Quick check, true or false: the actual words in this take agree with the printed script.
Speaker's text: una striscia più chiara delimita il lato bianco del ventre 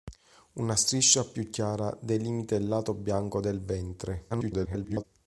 false